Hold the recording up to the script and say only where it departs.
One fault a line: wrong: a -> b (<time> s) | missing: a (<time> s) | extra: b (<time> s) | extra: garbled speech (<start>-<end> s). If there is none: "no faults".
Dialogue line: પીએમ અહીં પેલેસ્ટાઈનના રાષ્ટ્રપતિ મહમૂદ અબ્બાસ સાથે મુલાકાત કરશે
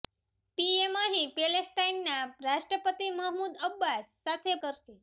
missing: મુલાકાત (4.6 s)